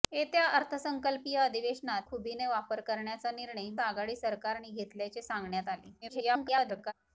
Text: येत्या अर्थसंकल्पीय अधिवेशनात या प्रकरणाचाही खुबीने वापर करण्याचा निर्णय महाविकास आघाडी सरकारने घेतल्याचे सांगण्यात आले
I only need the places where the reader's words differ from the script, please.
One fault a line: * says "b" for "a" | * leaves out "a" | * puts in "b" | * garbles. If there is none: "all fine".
* leaves out "या प्रकरणाचाही"
* leaves out "महाविकास"
* garbles